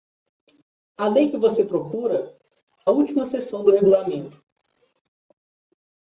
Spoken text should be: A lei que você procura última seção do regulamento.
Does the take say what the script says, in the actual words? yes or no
yes